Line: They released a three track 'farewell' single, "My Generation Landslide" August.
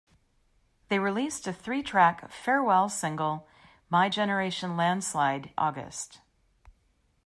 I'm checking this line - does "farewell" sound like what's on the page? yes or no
yes